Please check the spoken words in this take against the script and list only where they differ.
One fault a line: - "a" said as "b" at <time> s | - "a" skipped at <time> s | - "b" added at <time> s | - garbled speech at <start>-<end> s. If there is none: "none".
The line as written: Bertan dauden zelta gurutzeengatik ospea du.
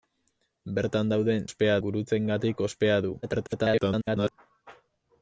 - "zelta" said as "ospea" at 1.5 s
- garbled speech at 3.2-4.3 s